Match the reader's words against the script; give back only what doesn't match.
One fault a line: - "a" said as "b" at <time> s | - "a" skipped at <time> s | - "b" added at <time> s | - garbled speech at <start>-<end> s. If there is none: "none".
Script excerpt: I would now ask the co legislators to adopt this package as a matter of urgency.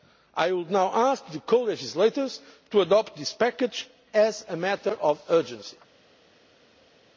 none